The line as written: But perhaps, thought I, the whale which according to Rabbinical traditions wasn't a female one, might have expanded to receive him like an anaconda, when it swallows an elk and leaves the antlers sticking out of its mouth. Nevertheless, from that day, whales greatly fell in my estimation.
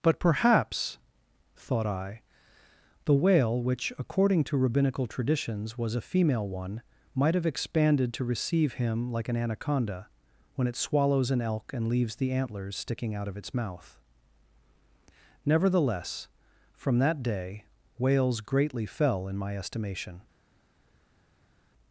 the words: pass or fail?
fail